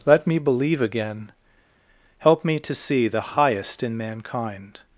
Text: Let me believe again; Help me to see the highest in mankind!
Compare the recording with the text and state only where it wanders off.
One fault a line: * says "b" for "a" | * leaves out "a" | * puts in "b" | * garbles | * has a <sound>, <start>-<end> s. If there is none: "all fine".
all fine